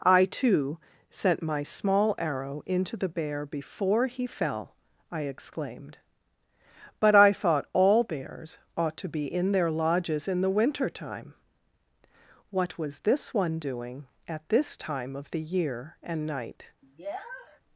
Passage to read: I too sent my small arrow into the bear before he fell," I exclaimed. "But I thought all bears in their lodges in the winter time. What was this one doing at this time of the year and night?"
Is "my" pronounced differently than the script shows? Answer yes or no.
no